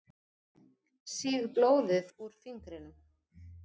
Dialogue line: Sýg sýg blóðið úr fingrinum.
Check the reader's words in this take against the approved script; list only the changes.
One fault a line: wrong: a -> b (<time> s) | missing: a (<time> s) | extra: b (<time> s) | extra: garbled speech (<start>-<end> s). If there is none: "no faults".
missing: sýg (1.5 s)